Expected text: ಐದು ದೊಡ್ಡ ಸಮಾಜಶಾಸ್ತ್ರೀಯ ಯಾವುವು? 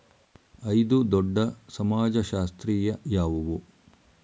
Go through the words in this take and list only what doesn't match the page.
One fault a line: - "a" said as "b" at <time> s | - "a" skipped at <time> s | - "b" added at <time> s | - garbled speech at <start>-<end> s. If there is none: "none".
none